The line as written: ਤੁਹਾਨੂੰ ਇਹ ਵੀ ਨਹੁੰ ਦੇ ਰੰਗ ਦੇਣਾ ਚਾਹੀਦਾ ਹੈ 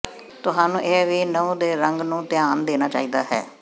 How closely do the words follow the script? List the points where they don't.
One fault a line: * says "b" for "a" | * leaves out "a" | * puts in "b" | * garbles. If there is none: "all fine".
* puts in "ਨੂੰ ਧਿਆਨ"